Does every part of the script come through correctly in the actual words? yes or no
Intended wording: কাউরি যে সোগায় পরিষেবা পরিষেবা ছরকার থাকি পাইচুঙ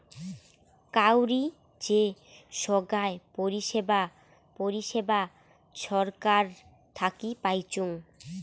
yes